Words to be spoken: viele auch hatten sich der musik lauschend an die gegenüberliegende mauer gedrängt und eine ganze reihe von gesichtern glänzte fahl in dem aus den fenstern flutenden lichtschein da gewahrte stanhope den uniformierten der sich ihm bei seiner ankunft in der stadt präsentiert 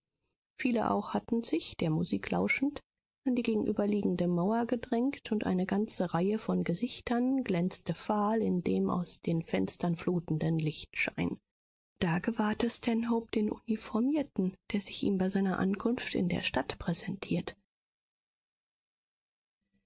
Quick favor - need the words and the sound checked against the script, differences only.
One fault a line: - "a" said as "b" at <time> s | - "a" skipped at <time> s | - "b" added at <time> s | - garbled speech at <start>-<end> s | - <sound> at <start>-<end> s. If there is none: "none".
none